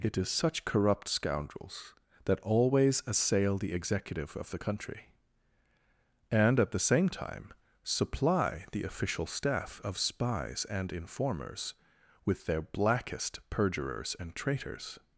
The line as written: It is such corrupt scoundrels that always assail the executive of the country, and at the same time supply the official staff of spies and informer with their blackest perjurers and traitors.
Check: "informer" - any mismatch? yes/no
yes